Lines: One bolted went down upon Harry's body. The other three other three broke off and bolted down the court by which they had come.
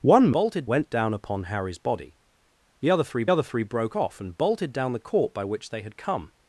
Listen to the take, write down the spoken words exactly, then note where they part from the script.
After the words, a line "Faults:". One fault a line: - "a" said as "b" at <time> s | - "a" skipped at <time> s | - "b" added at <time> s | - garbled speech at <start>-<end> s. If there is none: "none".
One bolted went down upon Harry's body. The other three other three broke off and bolted down the court by which they had come.
Faults:
none